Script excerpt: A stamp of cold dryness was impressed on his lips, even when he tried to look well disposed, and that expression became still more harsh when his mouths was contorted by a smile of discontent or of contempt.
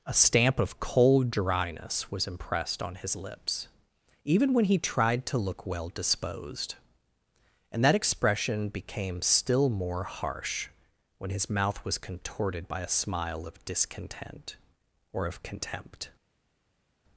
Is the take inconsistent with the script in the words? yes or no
yes